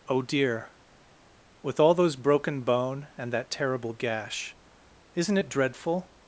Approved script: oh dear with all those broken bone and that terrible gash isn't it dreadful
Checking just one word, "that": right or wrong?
right